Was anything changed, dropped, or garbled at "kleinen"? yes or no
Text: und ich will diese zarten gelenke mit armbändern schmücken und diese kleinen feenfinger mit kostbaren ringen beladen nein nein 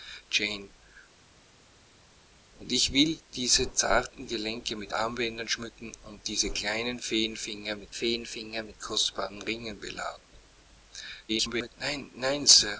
no